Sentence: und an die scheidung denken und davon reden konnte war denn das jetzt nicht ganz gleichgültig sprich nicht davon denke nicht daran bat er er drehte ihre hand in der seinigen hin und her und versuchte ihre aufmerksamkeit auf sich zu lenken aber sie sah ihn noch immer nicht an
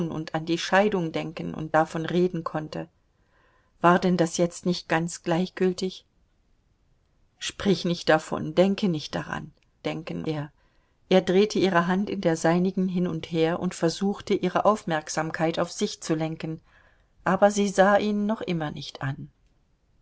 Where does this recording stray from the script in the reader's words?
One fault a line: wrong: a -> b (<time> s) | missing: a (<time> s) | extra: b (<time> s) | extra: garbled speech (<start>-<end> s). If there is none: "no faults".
wrong: bat -> denken (9.8 s)